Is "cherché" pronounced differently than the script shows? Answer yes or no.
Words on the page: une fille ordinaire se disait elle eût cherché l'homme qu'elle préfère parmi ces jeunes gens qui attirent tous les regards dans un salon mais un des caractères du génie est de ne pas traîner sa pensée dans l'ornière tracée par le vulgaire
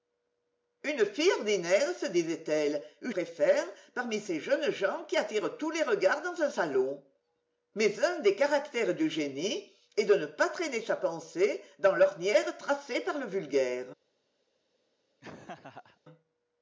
yes